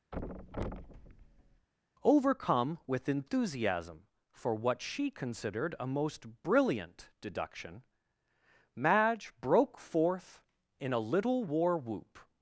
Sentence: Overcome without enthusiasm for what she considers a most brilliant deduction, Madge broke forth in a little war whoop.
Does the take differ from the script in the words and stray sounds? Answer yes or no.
yes